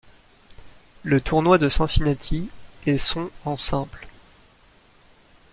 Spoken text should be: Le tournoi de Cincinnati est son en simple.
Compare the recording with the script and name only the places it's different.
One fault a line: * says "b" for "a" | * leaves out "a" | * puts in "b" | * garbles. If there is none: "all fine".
all fine